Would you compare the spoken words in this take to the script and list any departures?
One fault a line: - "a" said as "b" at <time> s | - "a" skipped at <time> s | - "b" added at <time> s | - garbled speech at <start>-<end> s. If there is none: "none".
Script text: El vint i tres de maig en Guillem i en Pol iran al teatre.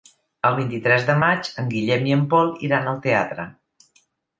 none